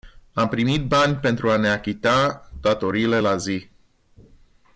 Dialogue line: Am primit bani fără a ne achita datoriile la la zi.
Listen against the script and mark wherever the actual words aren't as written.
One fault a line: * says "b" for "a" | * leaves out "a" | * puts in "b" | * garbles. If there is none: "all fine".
* says "pentru" for "fără"
* leaves out "la"